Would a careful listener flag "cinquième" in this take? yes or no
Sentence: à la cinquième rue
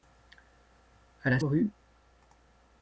yes